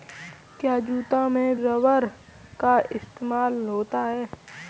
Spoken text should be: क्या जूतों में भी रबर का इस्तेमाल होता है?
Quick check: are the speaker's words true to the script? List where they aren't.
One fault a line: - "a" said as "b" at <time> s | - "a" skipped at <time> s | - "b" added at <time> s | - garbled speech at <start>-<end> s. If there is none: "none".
- "भी" skipped at 1.6 s